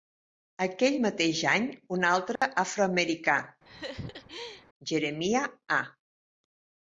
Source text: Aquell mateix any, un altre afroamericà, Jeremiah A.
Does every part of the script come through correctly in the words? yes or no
yes